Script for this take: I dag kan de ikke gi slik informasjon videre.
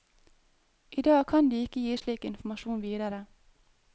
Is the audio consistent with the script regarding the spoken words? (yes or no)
yes